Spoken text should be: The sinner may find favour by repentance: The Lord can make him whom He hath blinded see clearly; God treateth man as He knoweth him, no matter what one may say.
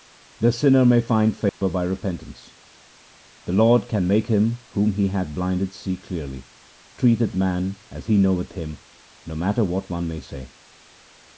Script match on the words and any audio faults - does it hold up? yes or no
no